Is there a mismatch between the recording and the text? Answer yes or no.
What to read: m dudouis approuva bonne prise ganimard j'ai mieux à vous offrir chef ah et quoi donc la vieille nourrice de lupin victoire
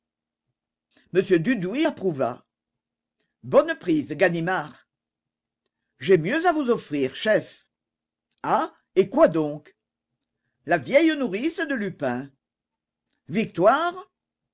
no